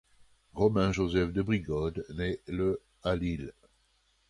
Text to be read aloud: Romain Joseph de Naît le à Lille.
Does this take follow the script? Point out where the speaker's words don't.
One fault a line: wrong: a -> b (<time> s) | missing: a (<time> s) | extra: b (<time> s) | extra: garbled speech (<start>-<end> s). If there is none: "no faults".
extra: Brigode (1.4 s)